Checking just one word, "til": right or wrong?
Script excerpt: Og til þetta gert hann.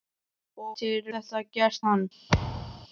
right